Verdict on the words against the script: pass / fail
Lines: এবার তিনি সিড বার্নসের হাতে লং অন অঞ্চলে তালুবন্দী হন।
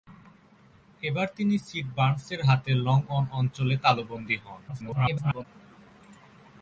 fail